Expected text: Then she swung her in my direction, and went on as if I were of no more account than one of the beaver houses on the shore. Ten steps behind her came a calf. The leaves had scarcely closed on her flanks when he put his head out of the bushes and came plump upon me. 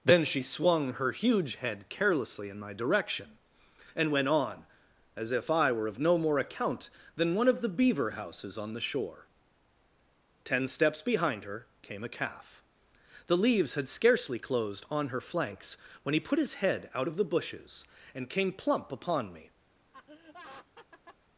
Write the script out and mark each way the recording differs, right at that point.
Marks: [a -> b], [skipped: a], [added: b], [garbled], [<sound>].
Then she swung her [added: huge head carelessly] in my direction, and went on as if I were of no more account than one of the beaver houses on the shore. Ten steps behind her came a calf. The leaves had scarcely closed on her flanks when he put his head out of the bushes and came plump upon me. [laugh]